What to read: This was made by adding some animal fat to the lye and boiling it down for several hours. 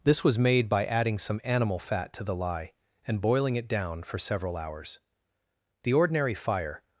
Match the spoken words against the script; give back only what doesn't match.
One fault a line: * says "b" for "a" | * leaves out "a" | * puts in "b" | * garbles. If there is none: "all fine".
* puts in "The ordinary fire"